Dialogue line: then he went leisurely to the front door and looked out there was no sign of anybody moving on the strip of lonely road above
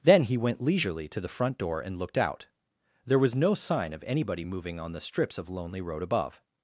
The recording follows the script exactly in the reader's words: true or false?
false